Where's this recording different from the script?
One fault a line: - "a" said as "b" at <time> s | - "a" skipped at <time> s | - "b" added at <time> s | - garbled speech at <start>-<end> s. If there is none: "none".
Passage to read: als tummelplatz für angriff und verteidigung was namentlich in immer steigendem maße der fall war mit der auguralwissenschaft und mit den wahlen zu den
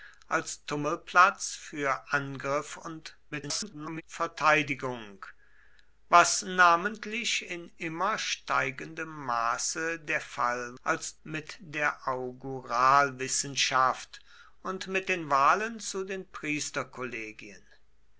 - garbled speech at 3.3-4.0 s
- "war" said as "als" at 10.8 s